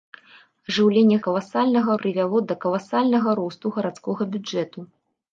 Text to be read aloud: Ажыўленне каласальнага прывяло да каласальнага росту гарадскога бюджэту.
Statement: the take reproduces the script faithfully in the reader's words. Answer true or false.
true